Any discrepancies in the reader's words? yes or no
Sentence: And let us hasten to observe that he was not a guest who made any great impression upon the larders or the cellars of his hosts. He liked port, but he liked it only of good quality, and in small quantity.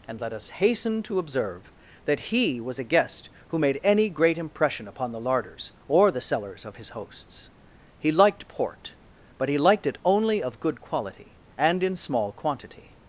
yes